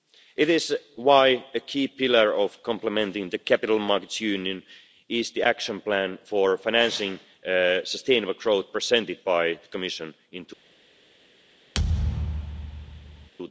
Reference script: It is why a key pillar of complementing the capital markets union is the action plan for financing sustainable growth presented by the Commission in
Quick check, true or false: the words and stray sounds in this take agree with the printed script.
false